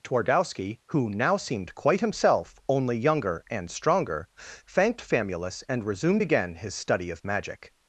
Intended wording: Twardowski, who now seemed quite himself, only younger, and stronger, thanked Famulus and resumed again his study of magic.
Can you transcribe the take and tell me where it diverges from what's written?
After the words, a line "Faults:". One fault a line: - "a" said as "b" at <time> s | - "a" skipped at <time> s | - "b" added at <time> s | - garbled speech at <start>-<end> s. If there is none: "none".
Twardowski, who now seemed quite himself, only younger, and stronger, thanked Famulus and resumed again his study of magic.
Faults:
none